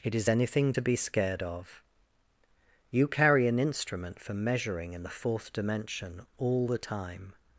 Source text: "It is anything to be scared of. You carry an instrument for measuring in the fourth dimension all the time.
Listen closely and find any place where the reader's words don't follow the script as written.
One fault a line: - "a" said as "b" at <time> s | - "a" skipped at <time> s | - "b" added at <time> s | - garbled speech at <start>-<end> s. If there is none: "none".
none